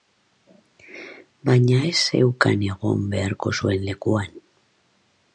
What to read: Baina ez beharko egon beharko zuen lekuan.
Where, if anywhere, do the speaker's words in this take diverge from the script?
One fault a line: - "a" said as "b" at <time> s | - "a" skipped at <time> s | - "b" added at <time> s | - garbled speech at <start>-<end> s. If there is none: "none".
- "beharko" said as "zeukan" at 2.0 s